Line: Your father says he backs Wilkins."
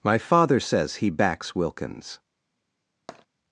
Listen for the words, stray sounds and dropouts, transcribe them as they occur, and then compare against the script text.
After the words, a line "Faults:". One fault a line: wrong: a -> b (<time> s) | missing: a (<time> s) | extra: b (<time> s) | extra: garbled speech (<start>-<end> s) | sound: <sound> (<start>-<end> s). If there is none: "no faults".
My father says he backs Wilkins."
Faults:
wrong: Your -> My (0.0 s)
sound: tap (3.1-3.3 s)